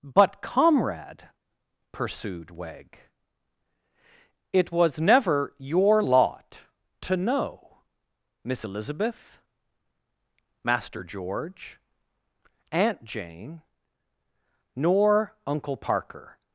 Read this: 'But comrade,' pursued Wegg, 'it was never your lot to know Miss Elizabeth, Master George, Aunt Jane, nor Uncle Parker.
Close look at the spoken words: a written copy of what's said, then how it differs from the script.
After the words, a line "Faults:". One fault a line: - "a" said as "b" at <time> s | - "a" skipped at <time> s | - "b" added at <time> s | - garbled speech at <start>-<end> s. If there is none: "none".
'But comrade,' pursued Wegg, 'it was never your lot to know Miss Elizabeth, Master George, Aunt Jane, nor Uncle Parker.
Faults:
none